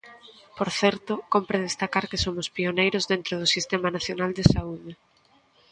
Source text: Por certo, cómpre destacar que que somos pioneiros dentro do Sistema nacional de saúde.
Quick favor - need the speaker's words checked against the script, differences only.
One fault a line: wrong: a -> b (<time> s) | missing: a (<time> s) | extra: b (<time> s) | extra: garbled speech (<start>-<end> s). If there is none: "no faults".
missing: que (2.2 s)